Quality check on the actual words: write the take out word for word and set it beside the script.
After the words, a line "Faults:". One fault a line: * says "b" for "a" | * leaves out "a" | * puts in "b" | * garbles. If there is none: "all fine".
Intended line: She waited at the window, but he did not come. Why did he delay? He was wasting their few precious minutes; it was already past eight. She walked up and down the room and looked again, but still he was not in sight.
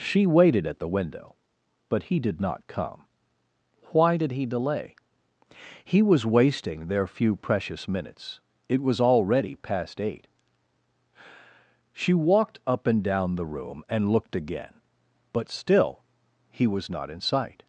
She waited at the window, but he did not come. Why did he delay? He was wasting their few precious minutes; it was already past eight. She walked up and down the room and looked again, but still he was not in sight.
Faults:
all fine